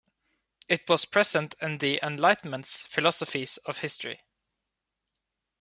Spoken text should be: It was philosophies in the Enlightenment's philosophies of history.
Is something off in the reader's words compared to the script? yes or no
yes